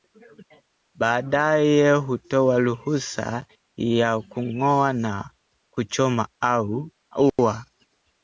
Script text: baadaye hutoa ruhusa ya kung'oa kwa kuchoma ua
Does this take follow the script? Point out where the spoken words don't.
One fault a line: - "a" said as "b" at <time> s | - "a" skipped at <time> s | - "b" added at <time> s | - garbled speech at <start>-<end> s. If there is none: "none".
- "kwa" said as "na" at 4.9 s